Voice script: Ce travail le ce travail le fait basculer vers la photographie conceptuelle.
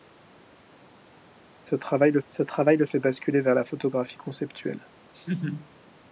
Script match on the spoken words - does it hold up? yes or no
yes